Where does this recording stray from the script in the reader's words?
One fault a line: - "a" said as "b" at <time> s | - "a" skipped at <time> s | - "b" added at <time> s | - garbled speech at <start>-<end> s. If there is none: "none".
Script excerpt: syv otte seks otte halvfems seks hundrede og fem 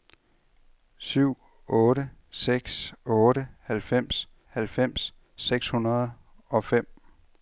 - "halvfems" added at 4.5 s